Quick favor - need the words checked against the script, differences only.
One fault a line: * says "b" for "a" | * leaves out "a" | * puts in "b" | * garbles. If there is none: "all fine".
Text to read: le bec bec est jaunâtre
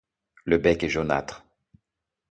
* leaves out "bec"